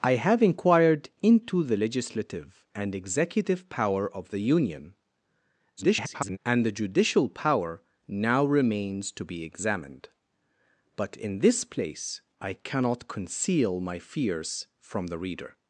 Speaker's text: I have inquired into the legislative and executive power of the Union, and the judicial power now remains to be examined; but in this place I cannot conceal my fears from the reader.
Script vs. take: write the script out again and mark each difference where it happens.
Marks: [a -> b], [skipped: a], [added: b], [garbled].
I have inquired into the legislative and executive power of the Union, [garbled] and the judicial power now remains to be examined; but in this place I cannot conceal my fears from the reader.